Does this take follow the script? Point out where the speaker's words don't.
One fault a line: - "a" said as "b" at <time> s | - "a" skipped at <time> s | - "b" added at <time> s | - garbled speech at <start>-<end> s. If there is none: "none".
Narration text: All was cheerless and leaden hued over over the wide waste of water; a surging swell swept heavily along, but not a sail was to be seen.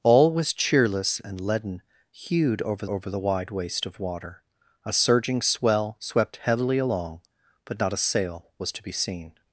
none